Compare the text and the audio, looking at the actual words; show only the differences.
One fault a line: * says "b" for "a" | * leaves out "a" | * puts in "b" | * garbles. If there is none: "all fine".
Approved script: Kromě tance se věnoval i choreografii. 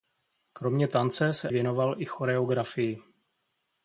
all fine